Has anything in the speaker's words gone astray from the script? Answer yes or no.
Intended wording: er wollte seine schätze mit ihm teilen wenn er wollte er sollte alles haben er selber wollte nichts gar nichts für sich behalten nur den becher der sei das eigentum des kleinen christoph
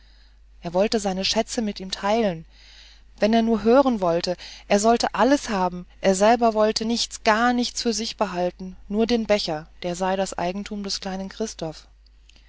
yes